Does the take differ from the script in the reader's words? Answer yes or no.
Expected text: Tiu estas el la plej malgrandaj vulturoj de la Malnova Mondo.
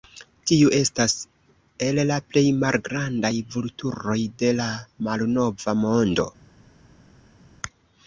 no